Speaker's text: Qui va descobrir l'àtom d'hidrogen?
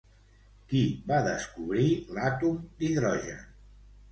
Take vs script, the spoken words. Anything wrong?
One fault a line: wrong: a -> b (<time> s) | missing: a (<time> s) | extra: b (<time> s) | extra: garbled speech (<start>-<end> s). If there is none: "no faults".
no faults